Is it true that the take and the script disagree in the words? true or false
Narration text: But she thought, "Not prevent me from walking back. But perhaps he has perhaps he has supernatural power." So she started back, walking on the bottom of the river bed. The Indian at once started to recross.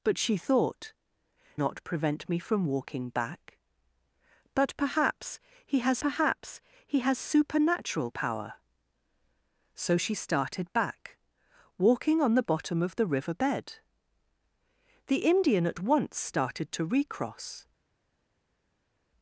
false